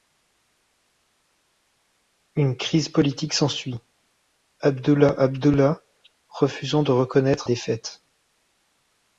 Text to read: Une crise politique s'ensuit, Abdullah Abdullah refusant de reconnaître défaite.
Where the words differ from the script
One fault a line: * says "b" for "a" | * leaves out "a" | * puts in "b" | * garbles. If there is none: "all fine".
all fine